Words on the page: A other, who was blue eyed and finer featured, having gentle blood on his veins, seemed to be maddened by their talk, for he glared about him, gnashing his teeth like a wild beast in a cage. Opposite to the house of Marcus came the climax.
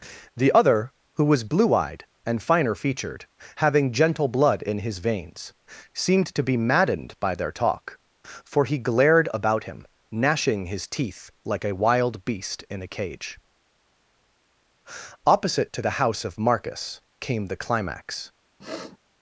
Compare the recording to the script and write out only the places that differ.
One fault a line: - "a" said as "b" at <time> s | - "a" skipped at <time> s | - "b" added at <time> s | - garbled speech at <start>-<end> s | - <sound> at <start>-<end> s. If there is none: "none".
- "A" said as "The" at 0.3 s
- "on" said as "in" at 4.6 s
- sniff at 18.6-19.0 s